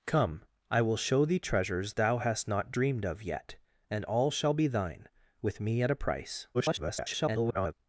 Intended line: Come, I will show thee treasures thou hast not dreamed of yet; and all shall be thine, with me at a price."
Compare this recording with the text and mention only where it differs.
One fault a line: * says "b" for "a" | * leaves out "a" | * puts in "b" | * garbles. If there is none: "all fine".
* garbles